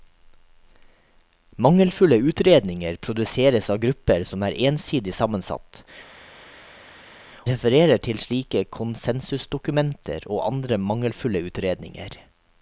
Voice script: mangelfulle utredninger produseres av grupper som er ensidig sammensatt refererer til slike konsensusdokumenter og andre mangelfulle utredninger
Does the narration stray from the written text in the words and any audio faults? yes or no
no